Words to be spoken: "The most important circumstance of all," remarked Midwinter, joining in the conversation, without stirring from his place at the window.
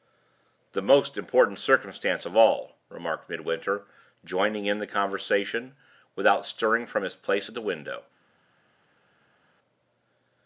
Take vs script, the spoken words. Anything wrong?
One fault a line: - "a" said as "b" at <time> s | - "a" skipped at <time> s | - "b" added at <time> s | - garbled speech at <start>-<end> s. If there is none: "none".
none